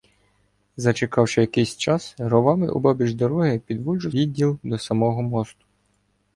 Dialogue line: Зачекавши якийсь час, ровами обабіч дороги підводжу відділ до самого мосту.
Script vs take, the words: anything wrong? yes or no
no